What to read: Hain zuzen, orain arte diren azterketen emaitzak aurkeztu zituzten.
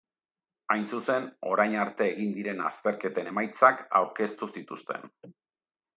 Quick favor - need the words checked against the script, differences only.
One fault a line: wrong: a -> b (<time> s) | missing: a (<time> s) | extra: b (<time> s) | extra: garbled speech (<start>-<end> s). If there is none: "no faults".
extra: egin (2.1 s)